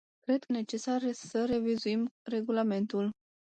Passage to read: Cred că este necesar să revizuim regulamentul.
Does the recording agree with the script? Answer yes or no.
no